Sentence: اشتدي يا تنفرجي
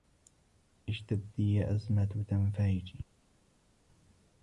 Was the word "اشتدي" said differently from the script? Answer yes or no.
no